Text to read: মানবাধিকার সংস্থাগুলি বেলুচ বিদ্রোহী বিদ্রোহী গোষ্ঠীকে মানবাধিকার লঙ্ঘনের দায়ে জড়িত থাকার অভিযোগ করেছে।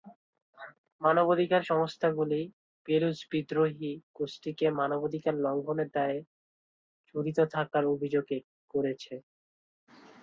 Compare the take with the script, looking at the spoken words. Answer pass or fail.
fail